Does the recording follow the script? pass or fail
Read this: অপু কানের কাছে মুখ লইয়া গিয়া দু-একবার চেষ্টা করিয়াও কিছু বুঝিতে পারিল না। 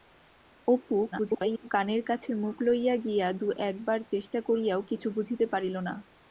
fail